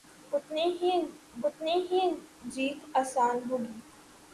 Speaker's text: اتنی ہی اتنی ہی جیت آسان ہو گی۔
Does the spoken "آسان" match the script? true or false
true